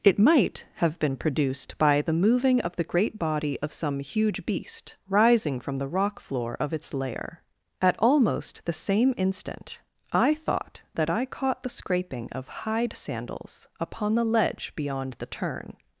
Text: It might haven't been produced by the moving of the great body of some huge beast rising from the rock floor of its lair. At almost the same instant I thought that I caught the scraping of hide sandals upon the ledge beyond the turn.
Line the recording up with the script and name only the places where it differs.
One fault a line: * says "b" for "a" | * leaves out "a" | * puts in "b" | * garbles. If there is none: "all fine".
* says "have" for "haven't"